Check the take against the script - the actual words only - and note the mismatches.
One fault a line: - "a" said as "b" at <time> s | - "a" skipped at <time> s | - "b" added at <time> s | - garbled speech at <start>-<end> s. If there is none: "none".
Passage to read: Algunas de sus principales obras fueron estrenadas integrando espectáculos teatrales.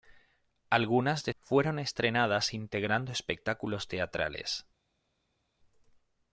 - "sus principales obras" skipped at 1.4 s